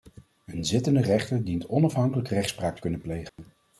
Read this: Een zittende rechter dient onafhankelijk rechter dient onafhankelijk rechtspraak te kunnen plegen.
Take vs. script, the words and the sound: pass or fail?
fail